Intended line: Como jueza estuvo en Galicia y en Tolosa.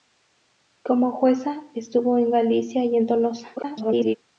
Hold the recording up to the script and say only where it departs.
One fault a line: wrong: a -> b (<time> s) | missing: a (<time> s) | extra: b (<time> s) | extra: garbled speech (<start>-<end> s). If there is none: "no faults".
extra: garbled speech (3.6-4.2 s)